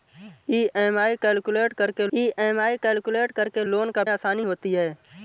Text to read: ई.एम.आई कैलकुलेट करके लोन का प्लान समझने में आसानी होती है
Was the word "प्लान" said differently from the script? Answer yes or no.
yes